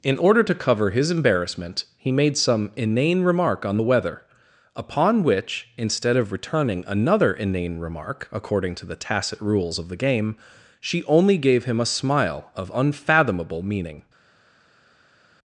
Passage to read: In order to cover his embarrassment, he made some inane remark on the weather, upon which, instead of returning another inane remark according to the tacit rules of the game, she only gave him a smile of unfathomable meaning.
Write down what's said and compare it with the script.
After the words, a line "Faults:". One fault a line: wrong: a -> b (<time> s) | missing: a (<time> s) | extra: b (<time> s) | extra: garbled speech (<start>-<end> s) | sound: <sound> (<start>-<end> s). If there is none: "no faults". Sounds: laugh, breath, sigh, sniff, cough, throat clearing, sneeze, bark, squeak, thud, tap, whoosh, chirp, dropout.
In order to cover his embarrassment, he made some inane remark on the weather, upon which, instead of returning another inane remark according to the tacit rules of the game, she only gave him a smile of unfathomable meaning.
Faults:
no faults